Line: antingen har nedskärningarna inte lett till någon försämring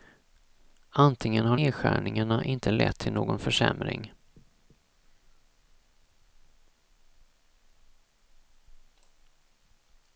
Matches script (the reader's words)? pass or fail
pass